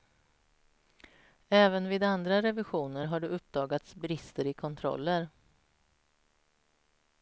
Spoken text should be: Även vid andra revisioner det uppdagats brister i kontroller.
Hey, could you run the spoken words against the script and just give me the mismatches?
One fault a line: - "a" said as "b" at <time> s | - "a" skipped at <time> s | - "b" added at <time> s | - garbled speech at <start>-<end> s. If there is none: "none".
- "har" added at 3.0 s